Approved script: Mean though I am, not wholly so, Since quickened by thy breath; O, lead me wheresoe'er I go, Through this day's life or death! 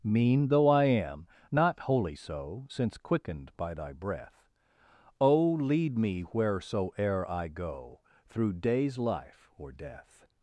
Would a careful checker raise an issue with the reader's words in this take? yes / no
yes